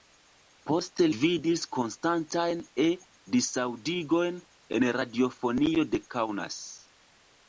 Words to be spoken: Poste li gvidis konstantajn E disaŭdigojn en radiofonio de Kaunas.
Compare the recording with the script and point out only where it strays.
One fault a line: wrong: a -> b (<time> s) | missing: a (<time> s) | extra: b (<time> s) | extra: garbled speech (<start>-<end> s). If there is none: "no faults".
missing: li (1.1 s)